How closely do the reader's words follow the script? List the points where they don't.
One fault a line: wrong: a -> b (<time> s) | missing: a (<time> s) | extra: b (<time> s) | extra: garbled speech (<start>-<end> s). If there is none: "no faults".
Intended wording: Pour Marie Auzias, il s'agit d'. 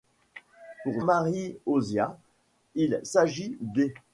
no faults